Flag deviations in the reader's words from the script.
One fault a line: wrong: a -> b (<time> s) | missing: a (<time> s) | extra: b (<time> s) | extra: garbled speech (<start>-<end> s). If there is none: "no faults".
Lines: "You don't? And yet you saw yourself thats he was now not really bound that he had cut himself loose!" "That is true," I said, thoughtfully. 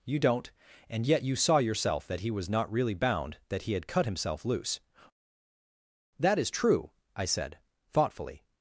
wrong: thats -> that (2.1 s)
missing: now (2.5 s)